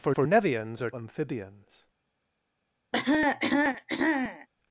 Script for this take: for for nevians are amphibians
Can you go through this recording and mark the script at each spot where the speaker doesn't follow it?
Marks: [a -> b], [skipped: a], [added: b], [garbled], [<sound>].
for for nevians are amphibians [cough]